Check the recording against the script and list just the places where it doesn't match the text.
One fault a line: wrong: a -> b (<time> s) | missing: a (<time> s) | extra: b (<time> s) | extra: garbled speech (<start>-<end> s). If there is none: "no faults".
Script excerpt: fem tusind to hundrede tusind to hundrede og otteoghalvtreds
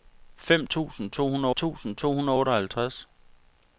no faults